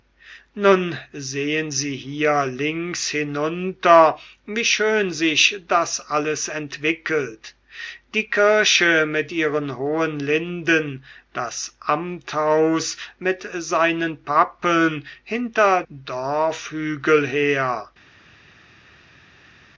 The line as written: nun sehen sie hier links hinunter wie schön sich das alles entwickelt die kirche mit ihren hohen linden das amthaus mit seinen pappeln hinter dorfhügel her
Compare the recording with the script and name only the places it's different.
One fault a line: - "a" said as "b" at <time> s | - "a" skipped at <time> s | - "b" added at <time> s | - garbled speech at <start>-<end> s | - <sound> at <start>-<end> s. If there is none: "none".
none